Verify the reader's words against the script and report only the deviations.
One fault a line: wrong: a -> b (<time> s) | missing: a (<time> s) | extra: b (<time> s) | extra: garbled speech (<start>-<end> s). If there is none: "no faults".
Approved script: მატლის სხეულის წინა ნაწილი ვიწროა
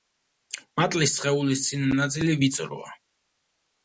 no faults